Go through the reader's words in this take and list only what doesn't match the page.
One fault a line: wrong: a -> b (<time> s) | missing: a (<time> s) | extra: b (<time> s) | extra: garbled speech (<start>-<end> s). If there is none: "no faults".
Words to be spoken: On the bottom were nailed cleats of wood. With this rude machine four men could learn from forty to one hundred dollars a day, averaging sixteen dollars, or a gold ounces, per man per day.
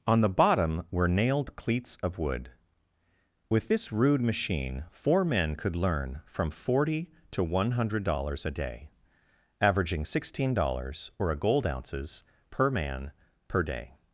no faults